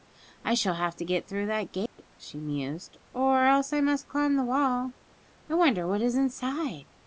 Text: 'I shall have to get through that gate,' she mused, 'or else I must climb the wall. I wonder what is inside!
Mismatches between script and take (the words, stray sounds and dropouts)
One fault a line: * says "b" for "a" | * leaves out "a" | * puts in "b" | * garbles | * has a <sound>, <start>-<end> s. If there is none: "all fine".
* has a dropout, 1.9-2.0 s